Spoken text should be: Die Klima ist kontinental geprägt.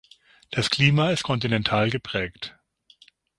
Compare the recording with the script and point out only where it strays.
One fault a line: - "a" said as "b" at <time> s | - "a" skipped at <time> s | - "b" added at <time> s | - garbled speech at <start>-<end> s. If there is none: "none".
- "Die" said as "Das" at 0.5 s